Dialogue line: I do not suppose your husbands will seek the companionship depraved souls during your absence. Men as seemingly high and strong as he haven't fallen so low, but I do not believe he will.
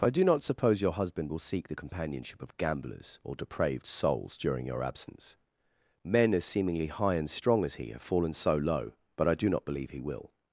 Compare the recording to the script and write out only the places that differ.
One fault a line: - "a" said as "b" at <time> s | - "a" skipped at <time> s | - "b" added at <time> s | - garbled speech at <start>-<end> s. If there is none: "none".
- "husbands" said as "husband" at 0.9 s
- "of gamblers or" added at 2.4 s
- "haven't" said as "have" at 7.9 s